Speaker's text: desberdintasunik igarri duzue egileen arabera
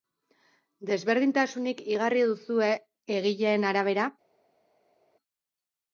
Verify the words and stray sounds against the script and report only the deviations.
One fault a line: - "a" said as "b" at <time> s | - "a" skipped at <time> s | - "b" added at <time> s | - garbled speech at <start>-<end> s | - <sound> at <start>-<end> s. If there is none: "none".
none